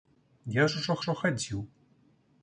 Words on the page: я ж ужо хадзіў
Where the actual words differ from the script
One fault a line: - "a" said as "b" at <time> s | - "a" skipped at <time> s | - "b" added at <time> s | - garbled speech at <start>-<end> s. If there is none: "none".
- "ужо" added at 1.0 s